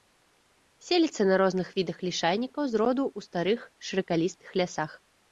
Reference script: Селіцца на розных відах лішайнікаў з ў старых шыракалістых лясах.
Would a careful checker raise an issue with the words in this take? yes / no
yes